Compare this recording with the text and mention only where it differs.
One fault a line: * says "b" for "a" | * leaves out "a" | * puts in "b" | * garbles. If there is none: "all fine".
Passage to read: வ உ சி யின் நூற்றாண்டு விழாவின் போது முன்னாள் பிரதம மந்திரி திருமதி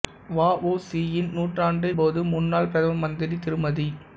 * leaves out "விழாவின்"